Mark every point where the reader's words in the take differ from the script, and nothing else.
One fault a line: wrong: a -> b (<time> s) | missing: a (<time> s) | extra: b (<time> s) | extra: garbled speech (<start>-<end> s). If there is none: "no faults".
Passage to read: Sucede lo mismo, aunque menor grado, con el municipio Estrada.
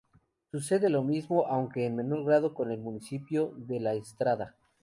extra: en (1.9 s)
extra: de La (3.6 s)